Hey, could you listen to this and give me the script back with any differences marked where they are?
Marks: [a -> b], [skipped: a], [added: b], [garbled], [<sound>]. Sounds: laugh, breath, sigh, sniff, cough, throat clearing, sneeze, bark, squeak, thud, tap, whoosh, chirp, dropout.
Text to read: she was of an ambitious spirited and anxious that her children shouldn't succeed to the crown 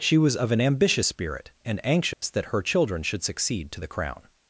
she was of an ambitious [spirited -> spirit] and anxious [dropout] that her children [shouldn't -> should] succeed to the crown